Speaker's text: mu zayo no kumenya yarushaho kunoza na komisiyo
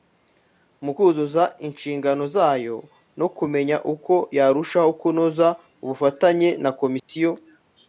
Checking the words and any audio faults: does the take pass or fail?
fail